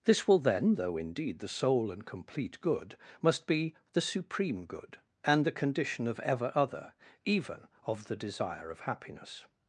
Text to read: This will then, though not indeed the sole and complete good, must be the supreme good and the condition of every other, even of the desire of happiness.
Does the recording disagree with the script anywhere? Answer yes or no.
yes